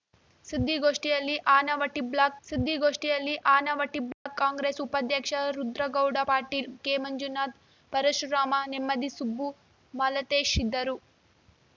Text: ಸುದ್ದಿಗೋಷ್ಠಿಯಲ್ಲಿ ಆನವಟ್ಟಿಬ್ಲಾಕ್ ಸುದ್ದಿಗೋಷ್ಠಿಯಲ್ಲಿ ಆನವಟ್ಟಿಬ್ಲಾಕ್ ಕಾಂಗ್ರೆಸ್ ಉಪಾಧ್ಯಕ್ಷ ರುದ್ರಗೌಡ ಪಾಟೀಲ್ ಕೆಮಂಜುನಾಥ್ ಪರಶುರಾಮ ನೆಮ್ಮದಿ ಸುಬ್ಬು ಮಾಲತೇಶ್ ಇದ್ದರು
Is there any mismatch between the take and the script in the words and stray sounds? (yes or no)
yes